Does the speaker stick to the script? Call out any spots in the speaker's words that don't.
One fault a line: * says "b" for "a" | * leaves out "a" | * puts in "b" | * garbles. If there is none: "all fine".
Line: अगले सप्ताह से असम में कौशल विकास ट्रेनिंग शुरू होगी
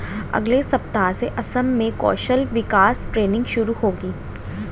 all fine